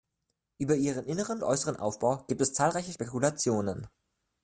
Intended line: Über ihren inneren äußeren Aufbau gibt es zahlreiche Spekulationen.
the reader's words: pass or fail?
pass